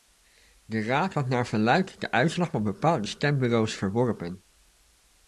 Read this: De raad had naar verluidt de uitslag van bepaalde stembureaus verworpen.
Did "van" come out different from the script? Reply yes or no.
no